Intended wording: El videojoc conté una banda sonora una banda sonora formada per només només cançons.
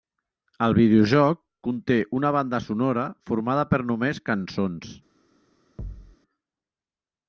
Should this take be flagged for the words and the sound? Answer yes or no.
yes